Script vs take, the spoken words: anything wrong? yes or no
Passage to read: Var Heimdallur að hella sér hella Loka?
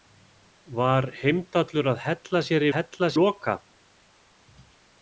no